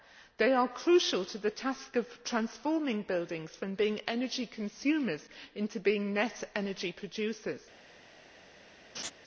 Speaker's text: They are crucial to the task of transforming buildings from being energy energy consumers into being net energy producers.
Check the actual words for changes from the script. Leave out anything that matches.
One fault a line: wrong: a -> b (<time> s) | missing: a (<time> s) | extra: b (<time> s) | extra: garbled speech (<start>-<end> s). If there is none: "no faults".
missing: energy (4.5 s)